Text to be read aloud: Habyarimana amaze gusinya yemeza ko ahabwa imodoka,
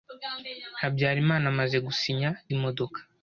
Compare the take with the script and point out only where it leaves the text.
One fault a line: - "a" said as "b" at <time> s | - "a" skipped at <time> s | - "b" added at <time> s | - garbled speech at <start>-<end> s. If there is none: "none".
- "yemeza ko ahabwa" skipped at 2.3 s